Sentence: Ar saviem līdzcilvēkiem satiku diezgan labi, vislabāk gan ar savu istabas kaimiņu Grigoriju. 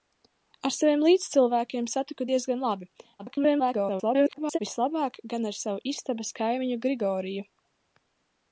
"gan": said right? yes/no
yes